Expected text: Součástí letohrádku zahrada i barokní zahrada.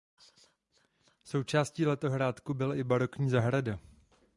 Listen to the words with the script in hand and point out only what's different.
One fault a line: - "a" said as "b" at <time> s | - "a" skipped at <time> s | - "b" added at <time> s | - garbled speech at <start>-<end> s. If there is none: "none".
- "zahrada" said as "byla" at 2.5 s